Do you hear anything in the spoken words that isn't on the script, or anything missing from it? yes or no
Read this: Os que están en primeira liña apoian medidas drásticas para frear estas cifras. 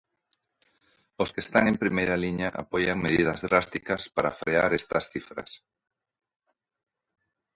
no